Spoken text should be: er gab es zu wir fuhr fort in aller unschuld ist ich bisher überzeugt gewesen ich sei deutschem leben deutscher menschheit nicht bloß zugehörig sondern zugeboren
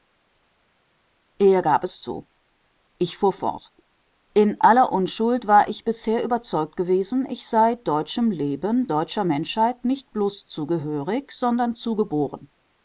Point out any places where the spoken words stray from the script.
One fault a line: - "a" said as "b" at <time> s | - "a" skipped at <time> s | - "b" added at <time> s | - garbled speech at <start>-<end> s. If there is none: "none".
- "wir" said as "ich" at 3.0 s
- "ist" said as "war" at 5.5 s